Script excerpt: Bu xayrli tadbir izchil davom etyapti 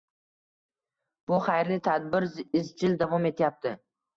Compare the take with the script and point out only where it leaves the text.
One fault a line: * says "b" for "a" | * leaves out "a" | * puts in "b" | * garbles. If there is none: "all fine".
all fine